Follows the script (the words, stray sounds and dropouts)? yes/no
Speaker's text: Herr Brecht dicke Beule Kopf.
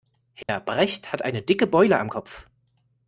no